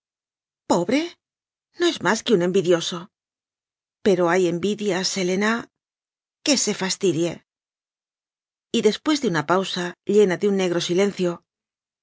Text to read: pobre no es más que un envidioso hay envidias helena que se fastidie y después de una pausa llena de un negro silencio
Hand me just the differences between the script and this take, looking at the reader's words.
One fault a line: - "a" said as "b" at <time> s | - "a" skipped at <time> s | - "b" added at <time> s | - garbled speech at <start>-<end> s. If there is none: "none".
- "pero" added at 4.0 s